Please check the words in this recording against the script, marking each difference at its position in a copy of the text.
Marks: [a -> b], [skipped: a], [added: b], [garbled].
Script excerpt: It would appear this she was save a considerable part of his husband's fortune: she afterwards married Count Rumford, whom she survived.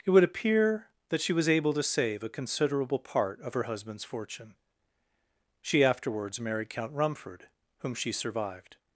It would appear [this -> that] she was [added: able to] save a considerable part of [his -> her] husband's fortune: she afterwards married Count Rumford, whom she survived.